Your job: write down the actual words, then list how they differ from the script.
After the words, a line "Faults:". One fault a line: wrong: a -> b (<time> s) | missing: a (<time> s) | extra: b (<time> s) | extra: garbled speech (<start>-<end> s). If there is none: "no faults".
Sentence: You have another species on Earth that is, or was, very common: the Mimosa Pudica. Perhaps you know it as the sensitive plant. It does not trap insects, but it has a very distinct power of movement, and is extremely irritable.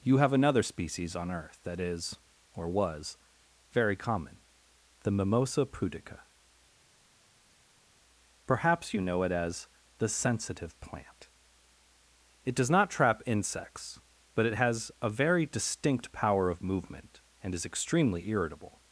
You have another species on Earth that is, or was, very common: the Mimosa Pudica. Perhaps you know it as the sensitive plant. It does not trap insects, but it has a very distinct power of movement, and is extremely irritable.
Faults:
no faults